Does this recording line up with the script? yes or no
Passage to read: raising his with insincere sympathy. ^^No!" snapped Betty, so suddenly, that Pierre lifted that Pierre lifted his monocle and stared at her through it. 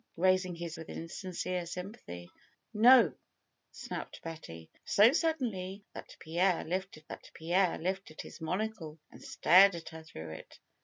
yes